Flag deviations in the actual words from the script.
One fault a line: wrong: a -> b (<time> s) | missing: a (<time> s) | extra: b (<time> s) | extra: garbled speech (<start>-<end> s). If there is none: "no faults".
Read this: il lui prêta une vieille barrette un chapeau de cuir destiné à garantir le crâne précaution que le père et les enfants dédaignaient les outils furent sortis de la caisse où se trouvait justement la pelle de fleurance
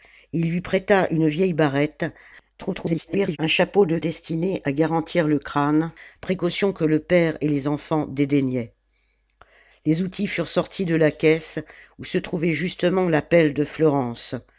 extra: garbled speech (2.6-3.4 s)
missing: cuir (4.0 s)